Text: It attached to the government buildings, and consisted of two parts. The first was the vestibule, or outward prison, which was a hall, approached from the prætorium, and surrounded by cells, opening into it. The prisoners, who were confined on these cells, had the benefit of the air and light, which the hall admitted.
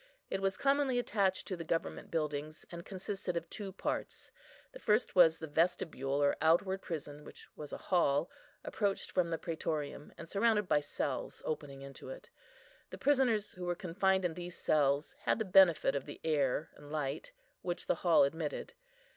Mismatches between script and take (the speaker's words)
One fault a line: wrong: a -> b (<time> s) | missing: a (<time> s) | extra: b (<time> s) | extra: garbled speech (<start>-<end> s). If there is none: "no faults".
extra: was commonly (0.4 s)
wrong: on -> in (14.2 s)